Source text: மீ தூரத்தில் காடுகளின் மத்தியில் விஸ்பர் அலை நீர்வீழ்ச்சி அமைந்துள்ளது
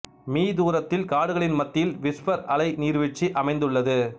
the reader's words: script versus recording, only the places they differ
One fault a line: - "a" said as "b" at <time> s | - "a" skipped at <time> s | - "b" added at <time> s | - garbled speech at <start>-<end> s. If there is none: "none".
none